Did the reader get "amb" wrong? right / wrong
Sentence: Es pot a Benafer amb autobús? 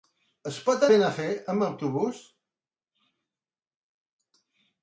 right